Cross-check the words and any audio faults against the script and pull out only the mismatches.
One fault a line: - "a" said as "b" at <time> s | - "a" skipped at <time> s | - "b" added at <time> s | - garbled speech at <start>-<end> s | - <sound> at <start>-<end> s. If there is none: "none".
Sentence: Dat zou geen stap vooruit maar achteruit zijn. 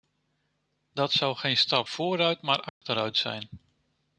- dropout at 2.7-2.8 s